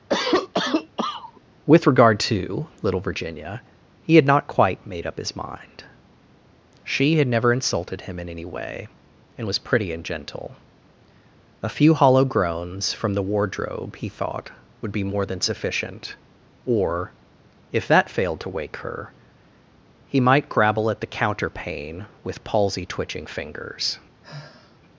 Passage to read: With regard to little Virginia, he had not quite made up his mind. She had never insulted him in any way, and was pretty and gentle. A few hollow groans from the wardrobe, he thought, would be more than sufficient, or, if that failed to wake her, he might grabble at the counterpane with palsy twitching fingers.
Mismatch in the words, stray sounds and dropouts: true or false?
true